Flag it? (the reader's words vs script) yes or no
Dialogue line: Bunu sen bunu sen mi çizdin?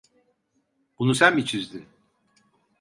yes